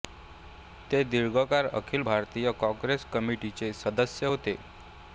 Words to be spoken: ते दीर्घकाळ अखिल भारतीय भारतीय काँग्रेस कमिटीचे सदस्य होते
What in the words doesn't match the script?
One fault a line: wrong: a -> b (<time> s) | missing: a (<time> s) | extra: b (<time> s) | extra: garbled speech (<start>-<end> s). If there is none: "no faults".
missing: भारतीय (2.5 s)